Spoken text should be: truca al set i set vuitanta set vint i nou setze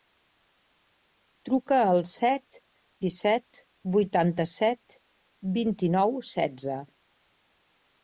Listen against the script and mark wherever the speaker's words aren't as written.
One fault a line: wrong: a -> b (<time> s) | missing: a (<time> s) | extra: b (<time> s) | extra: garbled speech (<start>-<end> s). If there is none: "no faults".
no faults